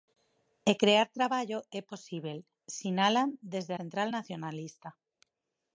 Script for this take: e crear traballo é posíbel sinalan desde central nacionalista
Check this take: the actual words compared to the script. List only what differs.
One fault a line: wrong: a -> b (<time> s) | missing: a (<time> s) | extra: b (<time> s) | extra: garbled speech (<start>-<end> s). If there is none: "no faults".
no faults